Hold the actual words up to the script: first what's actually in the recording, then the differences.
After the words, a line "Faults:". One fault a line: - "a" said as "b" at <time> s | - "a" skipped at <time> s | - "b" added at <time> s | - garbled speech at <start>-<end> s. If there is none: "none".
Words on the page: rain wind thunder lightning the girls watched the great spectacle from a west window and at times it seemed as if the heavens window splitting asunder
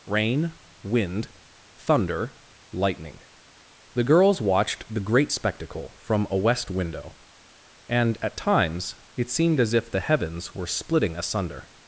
rain wind thunder lightning the girls watched the great spectacle from a west window and at times it seemed as if the heavens were splitting asunder
Faults:
- "window" said as "were" at 10.5 s